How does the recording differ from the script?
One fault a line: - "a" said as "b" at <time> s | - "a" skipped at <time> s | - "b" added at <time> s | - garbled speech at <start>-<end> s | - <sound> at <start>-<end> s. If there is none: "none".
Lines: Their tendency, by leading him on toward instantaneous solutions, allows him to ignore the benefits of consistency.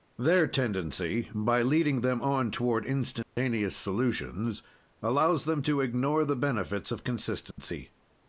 - "him" said as "them" at 2.0 s
- dropout at 3.2-3.4 s
- "him" said as "them" at 5.4 s
- dropout at 7.5-7.6 s